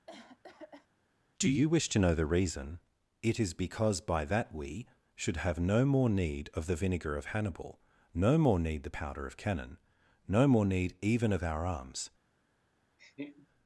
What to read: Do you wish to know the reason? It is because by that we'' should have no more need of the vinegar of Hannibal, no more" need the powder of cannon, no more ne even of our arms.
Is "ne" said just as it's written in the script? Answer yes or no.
no